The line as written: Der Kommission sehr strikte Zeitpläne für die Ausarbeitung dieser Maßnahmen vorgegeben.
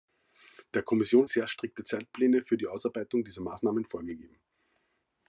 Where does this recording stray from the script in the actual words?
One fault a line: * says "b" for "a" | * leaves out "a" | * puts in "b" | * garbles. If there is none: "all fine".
all fine